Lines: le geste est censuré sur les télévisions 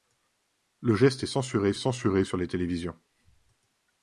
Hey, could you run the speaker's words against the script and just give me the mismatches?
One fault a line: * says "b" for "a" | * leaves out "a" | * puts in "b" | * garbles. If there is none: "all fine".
* puts in "censuré"